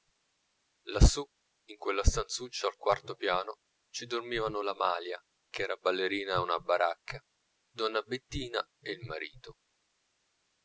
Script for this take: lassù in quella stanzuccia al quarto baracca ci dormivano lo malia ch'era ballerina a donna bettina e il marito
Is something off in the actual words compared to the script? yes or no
yes